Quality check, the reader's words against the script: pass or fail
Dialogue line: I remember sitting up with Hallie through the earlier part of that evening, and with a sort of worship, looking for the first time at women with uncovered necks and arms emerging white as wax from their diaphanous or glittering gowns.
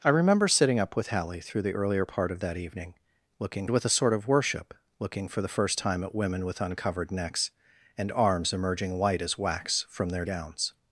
fail